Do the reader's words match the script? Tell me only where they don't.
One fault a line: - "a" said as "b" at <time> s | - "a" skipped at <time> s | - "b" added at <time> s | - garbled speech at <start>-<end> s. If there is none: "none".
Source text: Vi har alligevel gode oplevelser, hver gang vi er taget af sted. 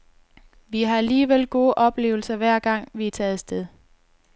none